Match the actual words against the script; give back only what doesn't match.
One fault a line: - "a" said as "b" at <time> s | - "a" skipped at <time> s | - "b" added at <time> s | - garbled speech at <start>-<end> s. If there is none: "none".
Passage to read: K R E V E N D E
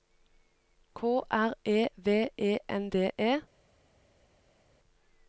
none